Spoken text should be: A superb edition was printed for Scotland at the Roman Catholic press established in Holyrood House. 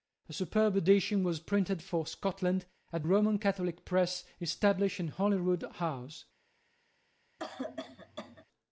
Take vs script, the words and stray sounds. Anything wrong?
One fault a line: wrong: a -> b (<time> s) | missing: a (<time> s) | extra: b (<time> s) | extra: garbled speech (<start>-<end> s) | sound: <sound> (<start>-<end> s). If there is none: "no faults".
missing: the (3.0 s)
sound: cough (7.4-8.4 s)